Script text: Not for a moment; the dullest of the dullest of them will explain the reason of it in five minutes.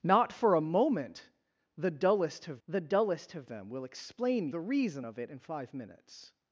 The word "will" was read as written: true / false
true